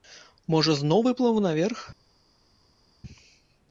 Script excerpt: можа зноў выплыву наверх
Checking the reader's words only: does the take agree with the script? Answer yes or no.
yes